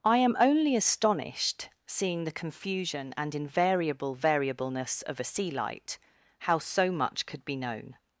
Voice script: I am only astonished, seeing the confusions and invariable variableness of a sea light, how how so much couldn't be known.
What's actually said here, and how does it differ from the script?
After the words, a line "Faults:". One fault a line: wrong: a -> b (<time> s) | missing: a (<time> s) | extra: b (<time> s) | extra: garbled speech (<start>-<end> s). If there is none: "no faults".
I am only astonished, seeing the confusion and invariable variableness of a sea light, how so much could be known.
Faults:
wrong: confusions -> confusion (2.3 s)
missing: how (6.6 s)
wrong: couldn't -> could (7.3 s)